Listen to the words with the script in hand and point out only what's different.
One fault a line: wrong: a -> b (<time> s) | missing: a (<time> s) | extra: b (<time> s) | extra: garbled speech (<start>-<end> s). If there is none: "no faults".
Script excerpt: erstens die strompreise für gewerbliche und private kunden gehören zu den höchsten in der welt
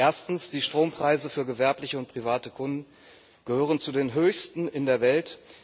no faults